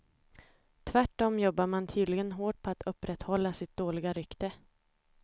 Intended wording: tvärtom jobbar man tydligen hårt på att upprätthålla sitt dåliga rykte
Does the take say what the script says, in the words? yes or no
yes